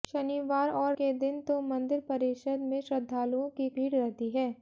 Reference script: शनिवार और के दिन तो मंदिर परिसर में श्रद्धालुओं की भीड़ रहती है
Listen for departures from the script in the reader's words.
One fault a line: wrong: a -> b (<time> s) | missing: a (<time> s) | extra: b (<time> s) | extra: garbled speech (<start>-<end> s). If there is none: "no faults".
no faults